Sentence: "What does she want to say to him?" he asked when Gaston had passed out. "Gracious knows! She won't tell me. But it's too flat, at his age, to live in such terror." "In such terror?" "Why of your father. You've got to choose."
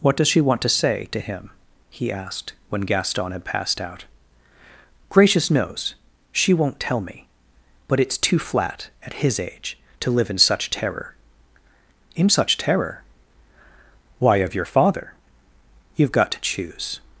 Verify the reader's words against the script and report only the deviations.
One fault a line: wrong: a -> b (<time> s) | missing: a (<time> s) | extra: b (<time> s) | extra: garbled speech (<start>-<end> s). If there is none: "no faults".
no faults